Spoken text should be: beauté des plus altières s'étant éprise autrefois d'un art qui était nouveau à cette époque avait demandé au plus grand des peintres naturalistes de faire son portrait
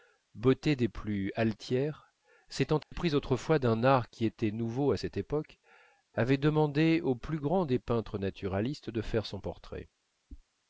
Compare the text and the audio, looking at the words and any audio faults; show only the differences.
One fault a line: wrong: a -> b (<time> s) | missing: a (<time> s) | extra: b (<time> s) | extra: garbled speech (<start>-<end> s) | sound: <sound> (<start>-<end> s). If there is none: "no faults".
sound: dropout (2.8-2.9 s)